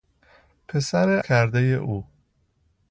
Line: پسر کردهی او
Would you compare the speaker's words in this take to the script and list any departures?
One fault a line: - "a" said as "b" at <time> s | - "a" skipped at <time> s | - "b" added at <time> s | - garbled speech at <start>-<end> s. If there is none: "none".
none